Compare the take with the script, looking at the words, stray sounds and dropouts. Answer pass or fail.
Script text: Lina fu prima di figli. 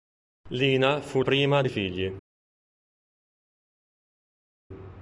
pass